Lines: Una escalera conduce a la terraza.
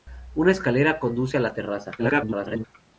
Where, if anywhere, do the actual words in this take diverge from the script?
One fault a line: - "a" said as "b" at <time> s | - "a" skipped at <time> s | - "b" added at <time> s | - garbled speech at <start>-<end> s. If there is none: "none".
- garbled speech at 2.0-2.6 s